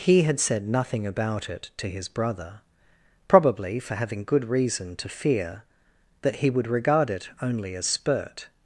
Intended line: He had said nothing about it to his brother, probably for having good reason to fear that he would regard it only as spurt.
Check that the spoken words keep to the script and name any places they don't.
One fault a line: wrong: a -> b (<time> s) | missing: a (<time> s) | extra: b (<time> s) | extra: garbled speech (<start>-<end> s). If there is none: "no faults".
no faults